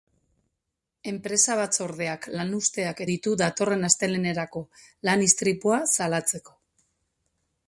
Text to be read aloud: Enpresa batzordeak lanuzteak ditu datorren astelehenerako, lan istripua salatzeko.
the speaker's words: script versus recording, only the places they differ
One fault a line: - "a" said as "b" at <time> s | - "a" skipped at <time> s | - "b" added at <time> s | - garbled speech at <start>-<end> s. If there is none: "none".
none